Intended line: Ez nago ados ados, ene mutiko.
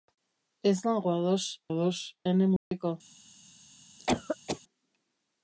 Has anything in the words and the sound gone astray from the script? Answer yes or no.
yes